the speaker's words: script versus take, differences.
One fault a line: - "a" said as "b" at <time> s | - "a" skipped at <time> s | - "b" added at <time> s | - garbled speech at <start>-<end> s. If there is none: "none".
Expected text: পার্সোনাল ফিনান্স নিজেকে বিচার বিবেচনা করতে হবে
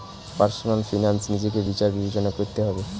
none